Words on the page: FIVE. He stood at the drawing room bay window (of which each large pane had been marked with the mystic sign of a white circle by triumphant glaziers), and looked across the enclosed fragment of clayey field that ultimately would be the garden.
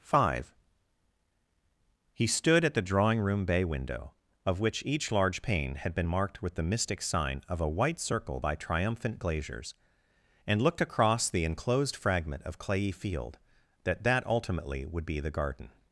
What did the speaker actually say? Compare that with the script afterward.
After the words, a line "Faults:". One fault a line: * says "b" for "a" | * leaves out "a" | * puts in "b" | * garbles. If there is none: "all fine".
FIVE. He stood at the drawing room bay window (of which each large pane had been marked with the mystic sign of a white circle by triumphant glaziers), and looked across the enclosed fragment of clayey field that that ultimately would be the garden.
Faults:
* puts in "that"